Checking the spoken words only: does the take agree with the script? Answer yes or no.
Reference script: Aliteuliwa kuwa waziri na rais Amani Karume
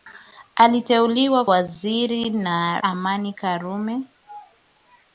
no